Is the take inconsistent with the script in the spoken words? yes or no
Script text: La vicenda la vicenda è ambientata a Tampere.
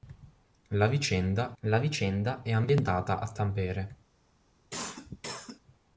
no